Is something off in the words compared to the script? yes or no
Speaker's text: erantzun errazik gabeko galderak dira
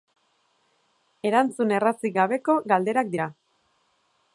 no